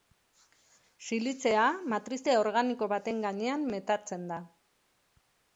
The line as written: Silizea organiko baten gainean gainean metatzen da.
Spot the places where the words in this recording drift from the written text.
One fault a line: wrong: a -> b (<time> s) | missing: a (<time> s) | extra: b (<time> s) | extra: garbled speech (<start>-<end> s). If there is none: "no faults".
extra: matrize (1.9 s)
missing: gainean (3.7 s)